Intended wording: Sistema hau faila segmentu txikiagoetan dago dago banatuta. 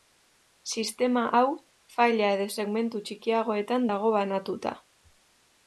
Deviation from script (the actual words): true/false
true